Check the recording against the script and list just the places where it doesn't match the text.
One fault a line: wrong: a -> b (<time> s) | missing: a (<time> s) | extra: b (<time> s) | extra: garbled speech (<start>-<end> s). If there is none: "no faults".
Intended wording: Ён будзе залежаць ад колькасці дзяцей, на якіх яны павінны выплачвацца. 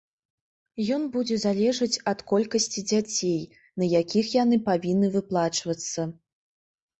no faults